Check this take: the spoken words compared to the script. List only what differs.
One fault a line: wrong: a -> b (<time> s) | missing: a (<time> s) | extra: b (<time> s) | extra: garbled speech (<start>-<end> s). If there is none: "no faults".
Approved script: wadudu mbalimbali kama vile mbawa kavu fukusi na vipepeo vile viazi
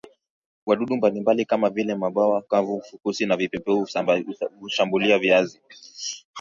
wrong: vile -> hushambulia (4.6 s)